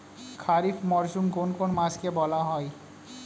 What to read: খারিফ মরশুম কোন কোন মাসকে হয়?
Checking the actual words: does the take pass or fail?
fail